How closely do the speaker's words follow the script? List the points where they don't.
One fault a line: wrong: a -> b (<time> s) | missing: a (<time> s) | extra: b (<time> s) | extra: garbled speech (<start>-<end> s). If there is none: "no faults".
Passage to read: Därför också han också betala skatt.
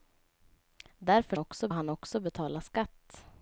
no faults